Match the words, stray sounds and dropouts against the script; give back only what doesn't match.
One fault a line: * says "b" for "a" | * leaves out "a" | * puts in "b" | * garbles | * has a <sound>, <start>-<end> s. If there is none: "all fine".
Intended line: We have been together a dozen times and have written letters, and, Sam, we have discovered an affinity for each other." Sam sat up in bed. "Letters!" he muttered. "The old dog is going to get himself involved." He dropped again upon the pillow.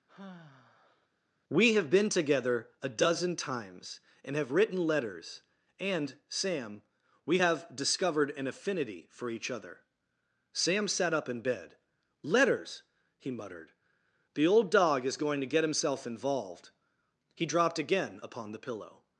* has a sigh, 0.1-1.1 s